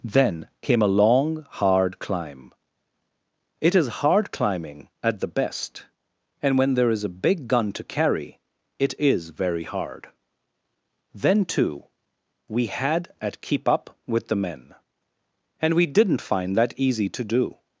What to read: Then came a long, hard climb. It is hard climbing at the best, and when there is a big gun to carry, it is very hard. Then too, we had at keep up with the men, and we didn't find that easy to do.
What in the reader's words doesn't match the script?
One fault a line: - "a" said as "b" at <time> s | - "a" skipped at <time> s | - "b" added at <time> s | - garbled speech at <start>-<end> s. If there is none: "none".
none